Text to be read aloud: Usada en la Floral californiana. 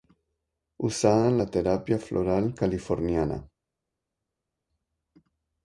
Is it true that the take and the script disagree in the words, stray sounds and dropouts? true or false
true